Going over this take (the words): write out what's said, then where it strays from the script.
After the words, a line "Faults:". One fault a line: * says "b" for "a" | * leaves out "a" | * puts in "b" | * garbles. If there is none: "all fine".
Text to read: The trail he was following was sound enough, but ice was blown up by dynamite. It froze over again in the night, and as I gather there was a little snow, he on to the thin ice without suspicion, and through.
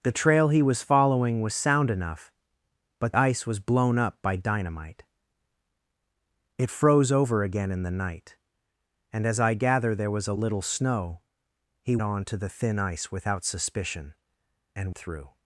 The trail he was following was sound enough, but ice was blown up by dynamite. It froze over again in the night, and as I gather there was a little snow, he on to the thin ice without suspicion, and through.
Faults:
all fine